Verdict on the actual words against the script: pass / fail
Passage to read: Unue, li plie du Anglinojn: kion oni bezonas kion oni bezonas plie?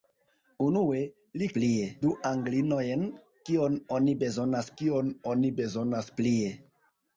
pass